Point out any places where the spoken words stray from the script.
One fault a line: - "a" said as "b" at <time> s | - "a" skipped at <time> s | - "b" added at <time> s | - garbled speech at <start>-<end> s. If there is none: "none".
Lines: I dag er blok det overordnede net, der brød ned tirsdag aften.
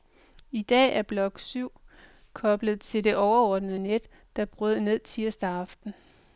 - "syv koblet til" added at 1.4 s